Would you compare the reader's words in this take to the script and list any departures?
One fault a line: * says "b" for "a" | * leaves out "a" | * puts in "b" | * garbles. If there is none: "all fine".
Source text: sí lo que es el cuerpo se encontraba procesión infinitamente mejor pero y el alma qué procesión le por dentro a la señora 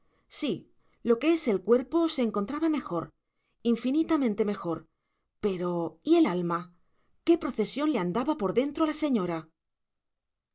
* says "mejor" for "procesión"
* puts in "andaba"